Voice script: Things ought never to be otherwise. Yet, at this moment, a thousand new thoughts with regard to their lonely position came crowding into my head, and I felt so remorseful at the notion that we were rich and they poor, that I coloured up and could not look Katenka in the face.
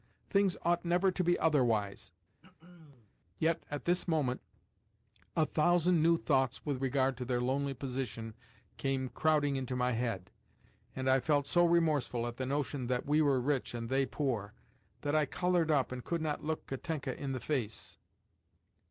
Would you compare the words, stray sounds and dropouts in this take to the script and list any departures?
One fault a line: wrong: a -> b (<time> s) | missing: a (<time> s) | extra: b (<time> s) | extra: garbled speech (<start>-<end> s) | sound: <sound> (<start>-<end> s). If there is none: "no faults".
sound: throat clearing (2.4-3.1 s)